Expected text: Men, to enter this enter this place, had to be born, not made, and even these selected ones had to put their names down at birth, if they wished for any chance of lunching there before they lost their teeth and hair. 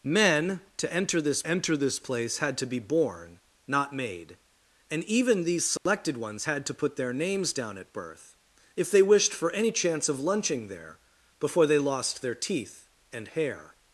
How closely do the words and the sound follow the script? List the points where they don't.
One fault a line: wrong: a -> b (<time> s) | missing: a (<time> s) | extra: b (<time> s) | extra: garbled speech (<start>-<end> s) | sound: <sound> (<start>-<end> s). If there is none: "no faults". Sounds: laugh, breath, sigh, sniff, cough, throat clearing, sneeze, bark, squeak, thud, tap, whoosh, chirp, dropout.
sound: dropout (5.8-5.9 s)